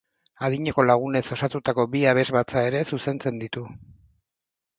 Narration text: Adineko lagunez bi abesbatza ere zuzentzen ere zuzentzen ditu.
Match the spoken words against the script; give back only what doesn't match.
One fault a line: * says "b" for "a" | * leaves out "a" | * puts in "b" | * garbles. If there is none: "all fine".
* puts in "osatutako"
* leaves out "ere zuzentzen"